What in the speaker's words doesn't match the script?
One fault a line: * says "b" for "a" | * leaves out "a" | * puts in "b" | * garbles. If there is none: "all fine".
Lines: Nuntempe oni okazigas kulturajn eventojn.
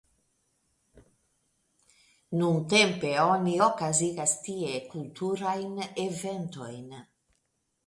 * puts in "tie"